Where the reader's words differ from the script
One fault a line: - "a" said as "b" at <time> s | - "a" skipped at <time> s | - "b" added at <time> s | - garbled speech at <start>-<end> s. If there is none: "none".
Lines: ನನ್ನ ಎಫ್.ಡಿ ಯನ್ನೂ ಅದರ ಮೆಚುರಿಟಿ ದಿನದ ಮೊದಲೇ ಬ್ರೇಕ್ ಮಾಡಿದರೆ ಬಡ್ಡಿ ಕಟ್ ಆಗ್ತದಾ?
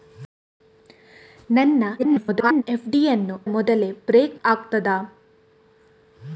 - garbled speech at 2.0-2.6 s
- "ಅದರ ಮೆಚುರಿಟಿ ದಿನದ" skipped at 3.4 s
- "ಮಾಡಿದರೆ ಬಡ್ಡಿ ಕಟ್" skipped at 4.4 s